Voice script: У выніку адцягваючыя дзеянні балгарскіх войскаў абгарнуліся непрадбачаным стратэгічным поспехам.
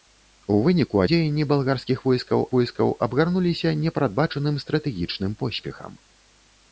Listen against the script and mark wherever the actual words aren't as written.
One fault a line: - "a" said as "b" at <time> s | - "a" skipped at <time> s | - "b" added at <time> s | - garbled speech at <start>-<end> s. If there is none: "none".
- "адцягваючыя" skipped at 1.0 s
- "войскаў" added at 2.6 s